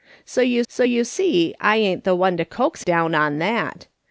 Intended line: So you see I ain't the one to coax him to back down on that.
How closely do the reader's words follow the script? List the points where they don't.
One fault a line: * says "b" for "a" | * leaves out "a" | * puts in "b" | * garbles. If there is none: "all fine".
* puts in "so you"
* leaves out "him to back"